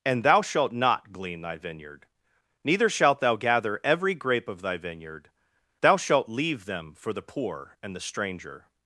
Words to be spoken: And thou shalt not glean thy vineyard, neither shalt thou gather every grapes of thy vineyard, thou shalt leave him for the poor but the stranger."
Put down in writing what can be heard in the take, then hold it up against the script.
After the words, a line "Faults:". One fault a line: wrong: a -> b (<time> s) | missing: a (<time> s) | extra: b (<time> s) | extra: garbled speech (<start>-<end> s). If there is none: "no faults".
And thou shalt not glean thy vineyard, neither shalt thou gather every grape of thy vineyard, thou shalt leave them for the poor and the stranger."
Faults:
wrong: grapes -> grape (4.2 s)
wrong: him -> them (6.7 s)
wrong: but -> and (7.8 s)